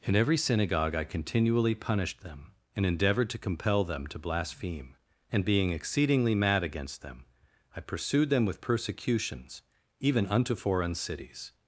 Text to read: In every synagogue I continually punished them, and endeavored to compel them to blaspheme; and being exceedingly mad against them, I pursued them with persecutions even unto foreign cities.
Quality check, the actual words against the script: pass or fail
pass